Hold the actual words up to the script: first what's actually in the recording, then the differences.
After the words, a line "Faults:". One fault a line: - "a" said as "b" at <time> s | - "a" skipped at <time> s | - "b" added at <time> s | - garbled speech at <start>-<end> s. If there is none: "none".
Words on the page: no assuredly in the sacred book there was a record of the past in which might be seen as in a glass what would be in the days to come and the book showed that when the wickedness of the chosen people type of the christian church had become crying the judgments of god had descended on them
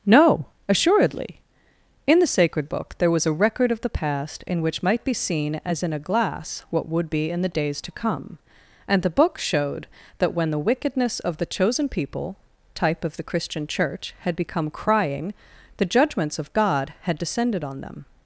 no assuredly in the sacred book there was a record of the past in which might be seen as in a glass what would be in the days to come and the book showed that when the wickedness of the chosen people type of the christian church had become crying the judgments of god had descended on them
Faults:
none